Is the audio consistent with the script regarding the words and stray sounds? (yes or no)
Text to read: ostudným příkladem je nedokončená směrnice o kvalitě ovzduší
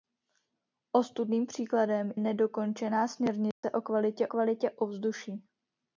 no